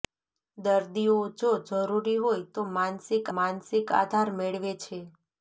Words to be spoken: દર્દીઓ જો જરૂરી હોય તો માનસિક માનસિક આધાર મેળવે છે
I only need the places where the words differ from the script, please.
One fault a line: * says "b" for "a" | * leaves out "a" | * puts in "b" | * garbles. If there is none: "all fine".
all fine